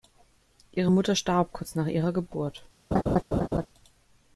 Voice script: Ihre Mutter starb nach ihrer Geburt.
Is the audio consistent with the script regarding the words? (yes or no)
no